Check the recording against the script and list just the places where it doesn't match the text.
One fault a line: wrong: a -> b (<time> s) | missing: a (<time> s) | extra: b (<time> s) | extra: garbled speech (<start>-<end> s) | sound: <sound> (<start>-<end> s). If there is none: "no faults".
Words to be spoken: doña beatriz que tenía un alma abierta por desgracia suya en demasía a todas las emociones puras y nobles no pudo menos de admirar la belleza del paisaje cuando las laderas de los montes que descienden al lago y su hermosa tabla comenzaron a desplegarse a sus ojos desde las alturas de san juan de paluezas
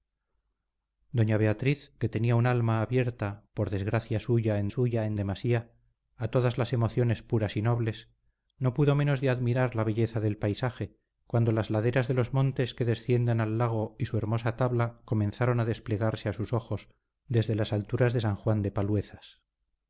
extra: suya en (4.7 s)